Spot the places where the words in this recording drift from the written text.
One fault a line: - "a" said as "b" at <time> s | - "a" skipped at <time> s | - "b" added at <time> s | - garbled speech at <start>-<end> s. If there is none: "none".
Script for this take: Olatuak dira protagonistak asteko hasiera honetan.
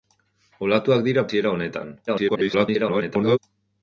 - "protagonistak asteko" skipped at 1.2 s
- garbled speech at 2.1-3.4 s